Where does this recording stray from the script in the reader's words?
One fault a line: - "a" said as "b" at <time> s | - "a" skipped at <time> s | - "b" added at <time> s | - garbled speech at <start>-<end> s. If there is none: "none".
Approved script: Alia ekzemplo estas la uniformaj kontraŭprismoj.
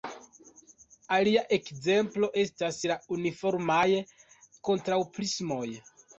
none